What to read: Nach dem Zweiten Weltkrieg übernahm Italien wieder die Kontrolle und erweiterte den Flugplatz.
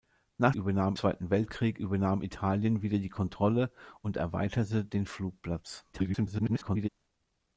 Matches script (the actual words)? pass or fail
fail